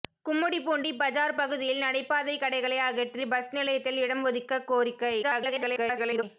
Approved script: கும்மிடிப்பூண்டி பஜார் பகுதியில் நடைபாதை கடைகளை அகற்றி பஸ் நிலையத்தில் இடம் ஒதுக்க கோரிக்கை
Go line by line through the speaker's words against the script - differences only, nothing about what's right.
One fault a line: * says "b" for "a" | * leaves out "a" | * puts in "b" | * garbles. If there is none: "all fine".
* garbles